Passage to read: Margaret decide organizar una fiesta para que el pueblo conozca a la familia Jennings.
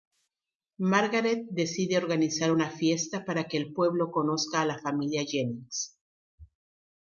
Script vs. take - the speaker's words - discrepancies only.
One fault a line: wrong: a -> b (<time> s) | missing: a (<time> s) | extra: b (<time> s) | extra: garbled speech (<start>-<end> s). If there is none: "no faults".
no faults